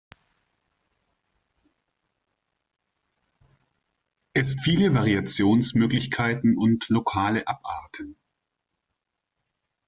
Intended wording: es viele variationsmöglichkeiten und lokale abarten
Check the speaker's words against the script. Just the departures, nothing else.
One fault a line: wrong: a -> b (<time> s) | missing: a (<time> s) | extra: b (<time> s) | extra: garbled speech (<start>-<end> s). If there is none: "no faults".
no faults